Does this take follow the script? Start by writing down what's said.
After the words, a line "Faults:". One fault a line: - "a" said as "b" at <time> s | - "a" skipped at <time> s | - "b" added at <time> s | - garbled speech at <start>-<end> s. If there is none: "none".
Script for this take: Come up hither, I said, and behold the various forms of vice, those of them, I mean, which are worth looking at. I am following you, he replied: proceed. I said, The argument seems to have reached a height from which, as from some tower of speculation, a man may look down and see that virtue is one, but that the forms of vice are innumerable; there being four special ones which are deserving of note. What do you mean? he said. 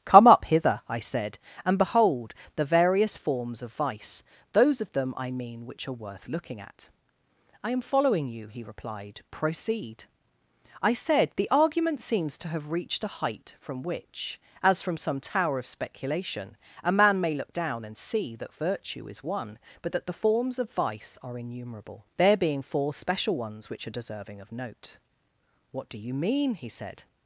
Come up hither, I said, and behold the various forms of vice, those of them, I mean, which are worth looking at. I am following you, he replied: proceed. I said, The argument seems to have reached a height from which, as from some tower of speculation, a man may look down and see that virtue is one, but that the forms of vice are innumerable; there being four special ones which are deserving of note. What do you mean? he said.
Faults:
none